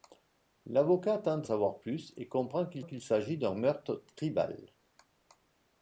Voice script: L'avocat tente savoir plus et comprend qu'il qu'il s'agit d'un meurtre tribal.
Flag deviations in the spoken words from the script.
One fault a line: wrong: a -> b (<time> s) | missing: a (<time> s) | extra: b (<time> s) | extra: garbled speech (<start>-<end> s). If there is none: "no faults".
no faults